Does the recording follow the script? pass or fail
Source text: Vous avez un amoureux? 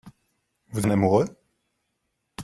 fail